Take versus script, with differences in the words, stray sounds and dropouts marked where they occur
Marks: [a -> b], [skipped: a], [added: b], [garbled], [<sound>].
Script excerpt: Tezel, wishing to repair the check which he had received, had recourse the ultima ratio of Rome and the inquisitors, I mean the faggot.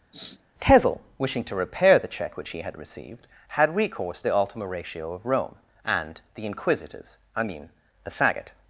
[sniff] Tezel, wishing to repair the check which he had received, had recourse the ultima ratio of Rome and the inquisitors, I mean the faggot.